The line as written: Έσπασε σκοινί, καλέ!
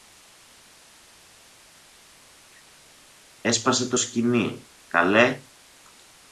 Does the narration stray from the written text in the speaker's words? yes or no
yes